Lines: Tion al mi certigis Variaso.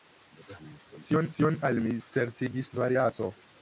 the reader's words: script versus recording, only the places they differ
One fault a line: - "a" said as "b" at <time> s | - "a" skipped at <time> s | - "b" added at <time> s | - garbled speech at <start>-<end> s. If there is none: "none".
- "tion" added at 1.4 s